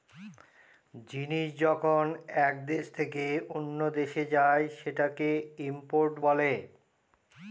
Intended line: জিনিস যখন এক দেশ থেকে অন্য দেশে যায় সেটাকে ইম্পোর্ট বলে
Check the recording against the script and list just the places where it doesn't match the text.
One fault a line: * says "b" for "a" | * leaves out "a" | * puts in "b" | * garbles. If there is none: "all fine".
all fine